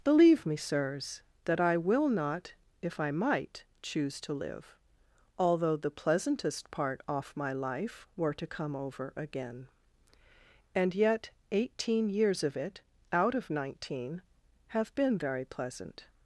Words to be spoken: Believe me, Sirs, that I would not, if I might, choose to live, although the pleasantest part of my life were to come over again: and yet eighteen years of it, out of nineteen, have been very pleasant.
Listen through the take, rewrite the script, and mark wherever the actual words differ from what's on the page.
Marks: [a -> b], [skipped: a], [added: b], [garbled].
Believe me, Sirs, that I [would -> will] not, if I might, choose to live, although the pleasantest part [of -> off] my life were to come over again: and yet eighteen years of it, out of nineteen, have been very pleasant.